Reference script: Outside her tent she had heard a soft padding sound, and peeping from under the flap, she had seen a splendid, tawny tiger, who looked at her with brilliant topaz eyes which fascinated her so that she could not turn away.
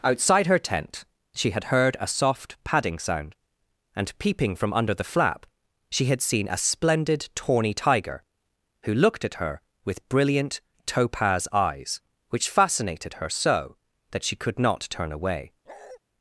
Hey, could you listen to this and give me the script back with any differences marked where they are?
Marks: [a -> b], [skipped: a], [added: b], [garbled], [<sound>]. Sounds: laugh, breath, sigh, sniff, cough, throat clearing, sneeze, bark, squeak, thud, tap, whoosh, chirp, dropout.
Outside her tent she had heard a soft padding sound, and peeping from under the flap, she had seen a splendid, tawny tiger, who looked at her with brilliant topaz eyes which fascinated her so that she could not turn away. [bark]